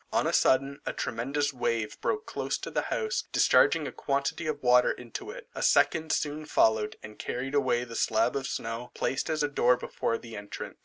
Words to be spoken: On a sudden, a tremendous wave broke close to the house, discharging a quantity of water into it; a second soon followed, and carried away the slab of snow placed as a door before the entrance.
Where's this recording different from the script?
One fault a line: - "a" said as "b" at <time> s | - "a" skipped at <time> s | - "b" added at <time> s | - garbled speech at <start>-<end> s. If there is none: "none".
none